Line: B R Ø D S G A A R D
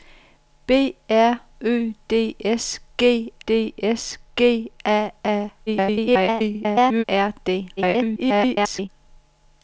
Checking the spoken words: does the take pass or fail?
fail